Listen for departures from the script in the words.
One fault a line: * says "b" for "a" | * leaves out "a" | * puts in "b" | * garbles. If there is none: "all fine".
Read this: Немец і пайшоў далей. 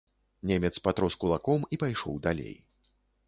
* puts in "патрос кулаком"